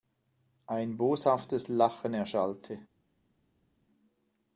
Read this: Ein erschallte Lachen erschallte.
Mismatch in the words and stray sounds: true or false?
true